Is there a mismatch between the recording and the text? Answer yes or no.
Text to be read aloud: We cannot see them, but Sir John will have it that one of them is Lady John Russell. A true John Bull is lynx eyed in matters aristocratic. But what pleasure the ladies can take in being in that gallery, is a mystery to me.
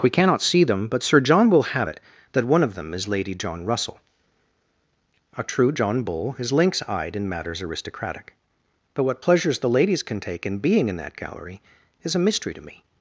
yes